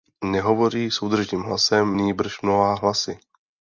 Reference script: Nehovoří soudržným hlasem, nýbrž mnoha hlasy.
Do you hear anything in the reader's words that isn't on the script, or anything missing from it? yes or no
no